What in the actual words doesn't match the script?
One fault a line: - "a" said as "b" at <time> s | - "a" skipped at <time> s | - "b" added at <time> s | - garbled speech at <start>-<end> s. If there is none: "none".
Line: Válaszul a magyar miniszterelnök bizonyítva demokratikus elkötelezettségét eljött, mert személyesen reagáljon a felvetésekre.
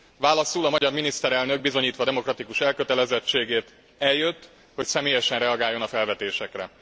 - "mert" said as "hogy" at 4.7 s